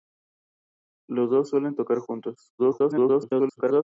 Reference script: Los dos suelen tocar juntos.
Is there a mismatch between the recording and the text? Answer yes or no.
yes